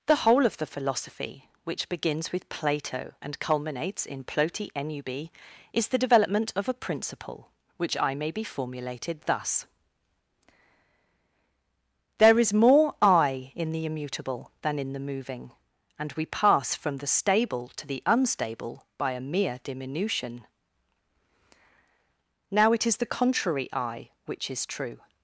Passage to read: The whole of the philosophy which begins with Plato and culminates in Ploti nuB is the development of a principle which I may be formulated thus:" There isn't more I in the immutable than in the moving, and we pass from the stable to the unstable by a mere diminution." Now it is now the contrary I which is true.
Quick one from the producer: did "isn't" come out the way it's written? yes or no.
no